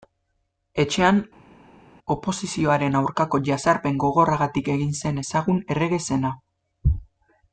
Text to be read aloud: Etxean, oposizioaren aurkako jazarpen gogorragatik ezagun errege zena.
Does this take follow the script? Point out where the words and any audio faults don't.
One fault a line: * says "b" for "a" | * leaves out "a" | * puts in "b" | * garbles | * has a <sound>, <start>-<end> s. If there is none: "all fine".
* puts in "egin zen"